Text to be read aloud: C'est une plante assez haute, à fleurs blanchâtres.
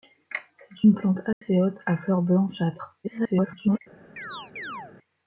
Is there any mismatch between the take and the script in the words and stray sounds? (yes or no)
yes